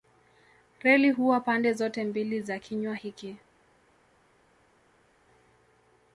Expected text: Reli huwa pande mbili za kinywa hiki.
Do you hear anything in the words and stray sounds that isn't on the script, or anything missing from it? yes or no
yes